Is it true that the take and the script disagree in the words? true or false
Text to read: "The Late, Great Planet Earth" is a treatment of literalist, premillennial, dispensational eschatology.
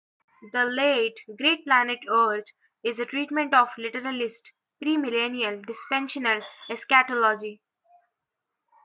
false